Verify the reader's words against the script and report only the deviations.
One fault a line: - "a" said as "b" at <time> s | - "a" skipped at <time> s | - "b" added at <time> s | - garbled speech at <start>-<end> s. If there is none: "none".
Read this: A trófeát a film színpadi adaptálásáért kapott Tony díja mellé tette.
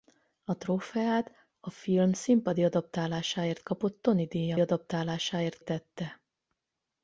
- "mellé" said as "adaptálásáért" at 4.6 s